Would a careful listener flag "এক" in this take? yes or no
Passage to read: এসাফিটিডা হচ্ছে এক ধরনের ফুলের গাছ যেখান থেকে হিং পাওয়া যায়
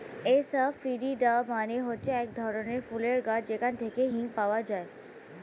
no